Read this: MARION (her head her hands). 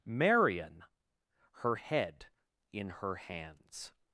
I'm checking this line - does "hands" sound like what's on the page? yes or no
yes